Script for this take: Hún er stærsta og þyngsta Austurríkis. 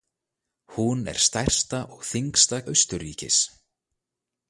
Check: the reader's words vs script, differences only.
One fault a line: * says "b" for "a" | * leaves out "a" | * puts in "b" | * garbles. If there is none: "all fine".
all fine